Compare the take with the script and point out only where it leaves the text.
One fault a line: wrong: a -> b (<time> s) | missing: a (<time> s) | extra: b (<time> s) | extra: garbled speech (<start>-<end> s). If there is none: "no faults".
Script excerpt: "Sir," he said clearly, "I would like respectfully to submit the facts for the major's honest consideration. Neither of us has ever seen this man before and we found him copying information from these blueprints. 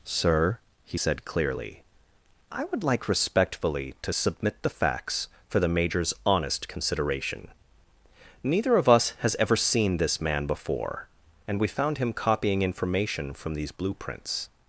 no faults